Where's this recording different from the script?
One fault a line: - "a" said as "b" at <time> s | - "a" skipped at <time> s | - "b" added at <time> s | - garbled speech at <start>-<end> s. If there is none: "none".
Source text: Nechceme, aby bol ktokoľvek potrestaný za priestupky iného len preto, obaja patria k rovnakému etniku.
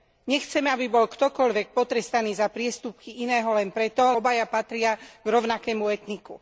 none